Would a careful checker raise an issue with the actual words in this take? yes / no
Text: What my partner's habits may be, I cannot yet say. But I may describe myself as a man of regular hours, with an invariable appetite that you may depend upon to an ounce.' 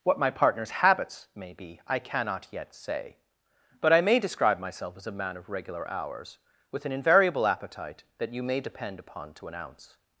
no